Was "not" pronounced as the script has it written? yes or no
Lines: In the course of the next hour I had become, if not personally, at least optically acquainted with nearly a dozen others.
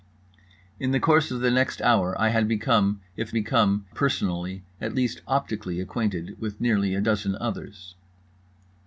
no